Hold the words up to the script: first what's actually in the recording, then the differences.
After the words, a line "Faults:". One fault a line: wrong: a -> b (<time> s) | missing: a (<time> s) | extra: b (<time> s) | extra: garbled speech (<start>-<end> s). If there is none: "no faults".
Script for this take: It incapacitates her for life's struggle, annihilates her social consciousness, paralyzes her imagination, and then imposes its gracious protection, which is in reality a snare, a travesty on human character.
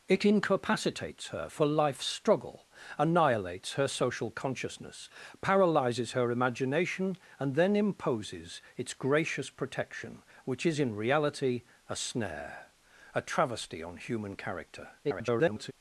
It incapacitates her for life's struggle, annihilates her social consciousness, paralyzes her imagination, and then imposes its gracious protection, which is in reality a snare, a travesty on human character. [garbled]
Faults:
extra: garbled speech (15.0-15.7 s)